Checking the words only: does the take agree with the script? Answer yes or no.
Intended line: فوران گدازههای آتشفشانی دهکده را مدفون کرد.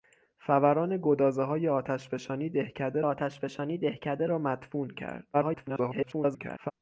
no